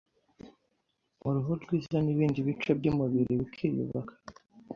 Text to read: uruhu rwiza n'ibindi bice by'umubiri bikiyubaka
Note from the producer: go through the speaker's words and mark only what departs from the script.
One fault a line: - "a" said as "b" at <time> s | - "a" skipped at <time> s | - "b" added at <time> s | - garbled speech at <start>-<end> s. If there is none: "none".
none